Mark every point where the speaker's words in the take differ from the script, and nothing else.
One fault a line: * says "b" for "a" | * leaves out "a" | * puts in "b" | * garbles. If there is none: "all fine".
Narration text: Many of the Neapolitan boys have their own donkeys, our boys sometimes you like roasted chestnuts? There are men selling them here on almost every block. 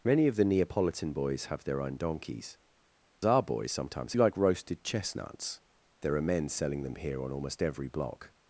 all fine